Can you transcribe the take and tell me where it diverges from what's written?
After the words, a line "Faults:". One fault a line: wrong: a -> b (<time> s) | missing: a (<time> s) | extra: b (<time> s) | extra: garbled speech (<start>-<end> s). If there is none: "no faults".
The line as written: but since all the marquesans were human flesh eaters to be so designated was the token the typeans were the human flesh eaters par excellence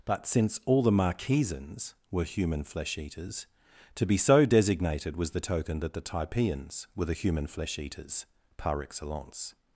but since all the marquesans were human flesh eaters to be so designated was the token that the typeans were the human flesh eaters par excellence
Faults:
extra: that (5.8 s)